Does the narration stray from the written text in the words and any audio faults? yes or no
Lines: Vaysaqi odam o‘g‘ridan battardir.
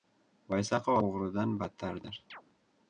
yes